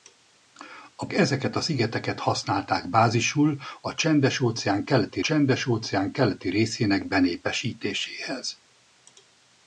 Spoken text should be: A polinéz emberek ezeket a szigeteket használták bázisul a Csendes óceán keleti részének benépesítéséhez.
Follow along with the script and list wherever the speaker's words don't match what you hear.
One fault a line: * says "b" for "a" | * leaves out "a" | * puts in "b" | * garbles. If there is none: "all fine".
* leaves out "polinéz emberek"
* puts in "Csendes óceán keleti"